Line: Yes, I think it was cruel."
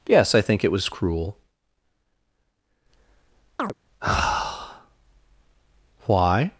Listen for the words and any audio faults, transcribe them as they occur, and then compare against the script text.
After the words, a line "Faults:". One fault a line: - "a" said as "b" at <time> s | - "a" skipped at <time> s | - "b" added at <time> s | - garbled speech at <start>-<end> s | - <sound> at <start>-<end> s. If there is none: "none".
Yes, I think it was cruel." why
Faults:
- chirp at 3.6-3.7 s
- "why" added at 6.1 s